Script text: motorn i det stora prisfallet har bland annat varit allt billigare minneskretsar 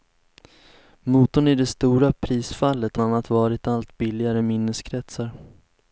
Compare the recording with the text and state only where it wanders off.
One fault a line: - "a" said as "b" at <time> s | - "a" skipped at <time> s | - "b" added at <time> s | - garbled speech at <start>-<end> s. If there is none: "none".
- "har bland" skipped at 3.0 s